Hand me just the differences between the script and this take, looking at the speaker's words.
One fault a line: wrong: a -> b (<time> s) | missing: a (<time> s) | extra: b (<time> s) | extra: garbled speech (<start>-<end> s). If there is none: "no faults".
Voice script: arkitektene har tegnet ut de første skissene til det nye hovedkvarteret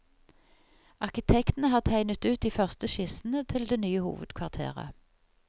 no faults